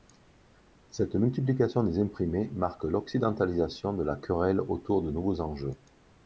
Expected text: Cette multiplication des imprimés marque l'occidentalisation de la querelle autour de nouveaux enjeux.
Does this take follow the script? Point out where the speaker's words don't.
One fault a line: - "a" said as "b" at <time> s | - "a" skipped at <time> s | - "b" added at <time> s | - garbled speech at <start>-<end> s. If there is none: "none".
none